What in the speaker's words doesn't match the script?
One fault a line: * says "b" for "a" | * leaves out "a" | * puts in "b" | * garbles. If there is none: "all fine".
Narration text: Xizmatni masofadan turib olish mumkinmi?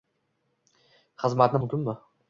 * leaves out "masofadan turib olish"